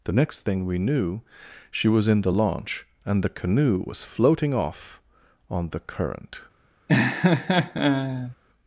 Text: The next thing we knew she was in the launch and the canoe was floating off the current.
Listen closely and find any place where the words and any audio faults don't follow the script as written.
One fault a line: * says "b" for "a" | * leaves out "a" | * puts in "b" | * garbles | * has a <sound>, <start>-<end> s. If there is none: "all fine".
* puts in "on"
* has a laugh, 6.9-8.4 s